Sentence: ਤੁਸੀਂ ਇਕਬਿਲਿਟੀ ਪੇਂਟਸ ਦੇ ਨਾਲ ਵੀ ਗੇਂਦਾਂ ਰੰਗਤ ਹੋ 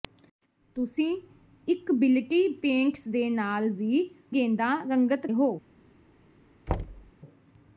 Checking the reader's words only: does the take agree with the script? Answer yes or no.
yes